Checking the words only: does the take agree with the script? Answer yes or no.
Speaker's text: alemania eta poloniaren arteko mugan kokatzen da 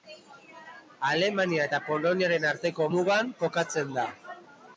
yes